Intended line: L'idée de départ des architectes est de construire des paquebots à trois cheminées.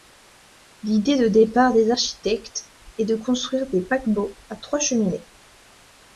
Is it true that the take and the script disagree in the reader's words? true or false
false